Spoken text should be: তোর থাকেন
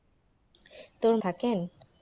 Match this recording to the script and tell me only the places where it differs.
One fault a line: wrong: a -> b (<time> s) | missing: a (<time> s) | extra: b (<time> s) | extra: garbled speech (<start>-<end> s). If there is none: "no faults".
no faults